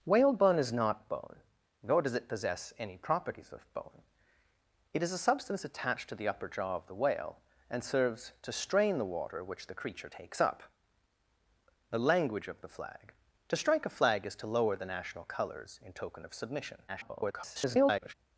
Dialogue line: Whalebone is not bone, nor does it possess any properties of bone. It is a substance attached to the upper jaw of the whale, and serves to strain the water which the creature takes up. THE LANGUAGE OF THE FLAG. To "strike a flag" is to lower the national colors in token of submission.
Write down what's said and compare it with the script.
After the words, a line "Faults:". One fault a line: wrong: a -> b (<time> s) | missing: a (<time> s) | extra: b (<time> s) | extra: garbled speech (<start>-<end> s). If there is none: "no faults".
Whalebone is not bone, nor does it possess any properties of bone. It is a substance attached to the upper jaw of the whale, and serves to strain the water which the creature takes up. THE LANGUAGE OF THE FLAG. To "strike a flag" is to lower the national colors in token of submission. [garbled]
Faults:
extra: garbled speech (16.9-18.1 s)